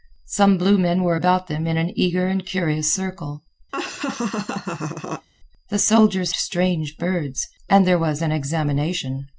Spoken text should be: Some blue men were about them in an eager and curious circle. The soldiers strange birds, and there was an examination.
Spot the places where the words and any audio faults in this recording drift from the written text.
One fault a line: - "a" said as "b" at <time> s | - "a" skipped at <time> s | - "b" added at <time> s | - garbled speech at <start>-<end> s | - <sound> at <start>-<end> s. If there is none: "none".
- laugh at 3.7-5.3 s